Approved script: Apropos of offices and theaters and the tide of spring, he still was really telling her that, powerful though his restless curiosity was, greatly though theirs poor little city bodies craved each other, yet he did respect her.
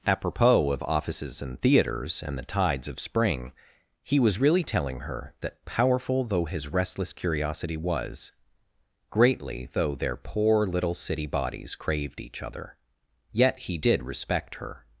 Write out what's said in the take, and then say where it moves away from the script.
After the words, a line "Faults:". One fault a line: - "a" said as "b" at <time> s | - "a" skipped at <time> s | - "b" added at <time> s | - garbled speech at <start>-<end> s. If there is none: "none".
Apropos of offices and theaters and the tides of spring, he was really telling her that, powerful though his restless curiosity was, greatly though their poor little city bodies craved each other, yet he did respect her.
Faults:
- "tide" said as "tides" at 2.5 s
- "still" skipped at 4.2 s
- "theirs" said as "their" at 9.9 s